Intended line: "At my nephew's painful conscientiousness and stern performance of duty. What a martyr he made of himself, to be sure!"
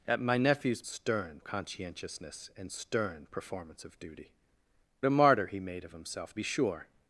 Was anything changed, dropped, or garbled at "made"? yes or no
no